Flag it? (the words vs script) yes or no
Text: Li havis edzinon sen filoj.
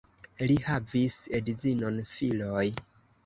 yes